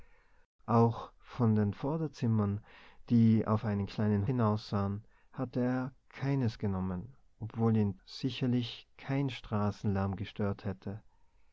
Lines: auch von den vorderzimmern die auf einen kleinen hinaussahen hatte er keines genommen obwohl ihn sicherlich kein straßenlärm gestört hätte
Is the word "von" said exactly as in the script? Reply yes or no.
yes